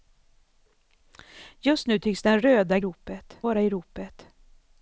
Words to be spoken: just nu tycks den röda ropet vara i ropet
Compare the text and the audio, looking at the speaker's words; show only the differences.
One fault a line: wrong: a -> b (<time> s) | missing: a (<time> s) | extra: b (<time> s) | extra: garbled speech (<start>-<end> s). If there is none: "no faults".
no faults